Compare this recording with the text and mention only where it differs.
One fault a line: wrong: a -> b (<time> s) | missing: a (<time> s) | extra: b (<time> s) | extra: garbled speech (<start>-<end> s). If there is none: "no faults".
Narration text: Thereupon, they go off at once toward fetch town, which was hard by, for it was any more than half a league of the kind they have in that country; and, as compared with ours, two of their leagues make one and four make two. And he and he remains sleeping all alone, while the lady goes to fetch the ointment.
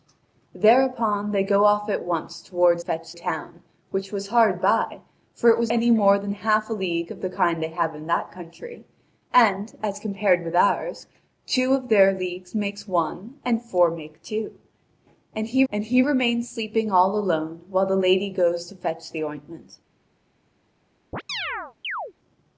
no faults